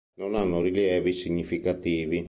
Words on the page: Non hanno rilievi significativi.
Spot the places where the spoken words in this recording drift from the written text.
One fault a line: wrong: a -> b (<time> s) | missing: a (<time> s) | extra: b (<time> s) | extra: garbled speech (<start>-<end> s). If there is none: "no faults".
no faults